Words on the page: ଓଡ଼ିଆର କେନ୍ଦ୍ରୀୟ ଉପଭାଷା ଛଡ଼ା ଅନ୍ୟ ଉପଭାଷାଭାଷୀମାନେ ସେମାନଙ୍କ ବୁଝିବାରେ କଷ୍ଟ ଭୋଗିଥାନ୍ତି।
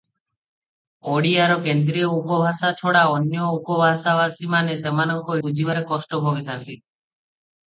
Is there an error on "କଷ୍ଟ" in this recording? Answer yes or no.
no